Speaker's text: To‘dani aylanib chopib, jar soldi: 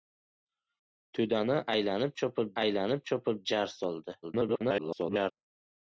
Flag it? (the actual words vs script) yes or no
yes